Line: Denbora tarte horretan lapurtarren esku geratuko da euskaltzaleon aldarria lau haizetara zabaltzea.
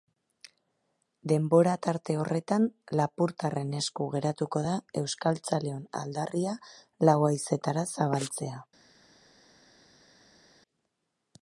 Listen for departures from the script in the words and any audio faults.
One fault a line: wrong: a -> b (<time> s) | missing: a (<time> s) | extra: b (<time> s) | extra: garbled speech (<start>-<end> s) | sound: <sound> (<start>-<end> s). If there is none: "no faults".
no faults